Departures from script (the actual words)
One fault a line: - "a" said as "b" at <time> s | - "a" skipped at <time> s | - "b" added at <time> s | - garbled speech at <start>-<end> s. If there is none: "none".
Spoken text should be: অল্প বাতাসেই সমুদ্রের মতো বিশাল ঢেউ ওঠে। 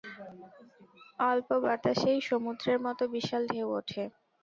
none